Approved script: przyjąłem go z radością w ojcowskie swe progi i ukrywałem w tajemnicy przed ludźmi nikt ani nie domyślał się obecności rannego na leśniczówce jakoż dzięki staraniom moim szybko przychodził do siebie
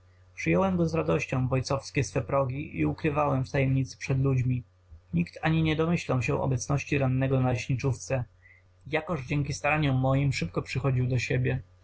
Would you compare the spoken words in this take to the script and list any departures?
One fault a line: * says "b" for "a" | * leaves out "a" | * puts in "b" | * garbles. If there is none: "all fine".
all fine